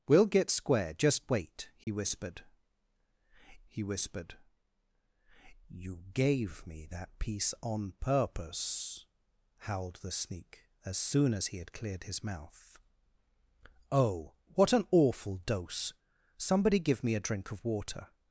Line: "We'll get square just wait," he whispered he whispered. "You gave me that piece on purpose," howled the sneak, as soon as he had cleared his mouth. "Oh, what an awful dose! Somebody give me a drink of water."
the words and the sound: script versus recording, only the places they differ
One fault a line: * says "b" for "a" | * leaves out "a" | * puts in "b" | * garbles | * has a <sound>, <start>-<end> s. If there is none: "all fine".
* has a dropout, 1.8-1.9 s